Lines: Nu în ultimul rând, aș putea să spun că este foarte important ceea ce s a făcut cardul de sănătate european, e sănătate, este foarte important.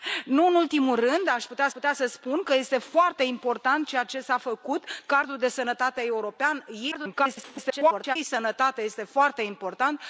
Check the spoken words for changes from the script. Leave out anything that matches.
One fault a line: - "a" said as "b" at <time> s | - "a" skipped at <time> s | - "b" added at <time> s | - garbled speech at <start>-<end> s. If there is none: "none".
- "putea" added at 1.7 s
- garbled speech at 6.9-8.2 s